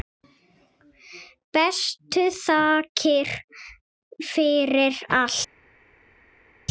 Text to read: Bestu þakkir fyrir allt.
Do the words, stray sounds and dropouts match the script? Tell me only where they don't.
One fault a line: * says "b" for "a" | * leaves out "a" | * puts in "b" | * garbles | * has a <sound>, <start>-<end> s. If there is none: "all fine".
all fine